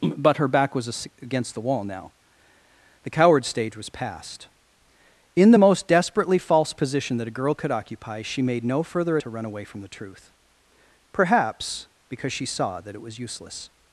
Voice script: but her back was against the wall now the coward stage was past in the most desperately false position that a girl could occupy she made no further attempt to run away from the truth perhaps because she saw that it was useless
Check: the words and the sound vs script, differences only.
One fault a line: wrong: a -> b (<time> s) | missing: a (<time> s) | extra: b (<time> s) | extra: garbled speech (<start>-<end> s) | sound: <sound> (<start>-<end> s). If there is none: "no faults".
missing: attempt (9.2 s)